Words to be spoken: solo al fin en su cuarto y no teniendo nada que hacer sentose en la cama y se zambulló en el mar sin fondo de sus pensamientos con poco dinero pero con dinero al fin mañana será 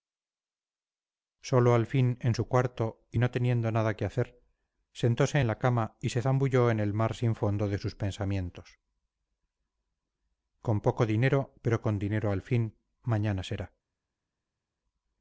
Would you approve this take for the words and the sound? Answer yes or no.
yes